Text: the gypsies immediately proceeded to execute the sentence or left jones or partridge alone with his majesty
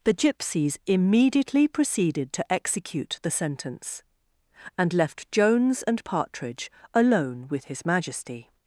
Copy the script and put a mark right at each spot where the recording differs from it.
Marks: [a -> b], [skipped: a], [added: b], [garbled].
the gypsies immediately proceeded to execute the sentence [or -> and] left jones [or -> and] partridge alone with his majesty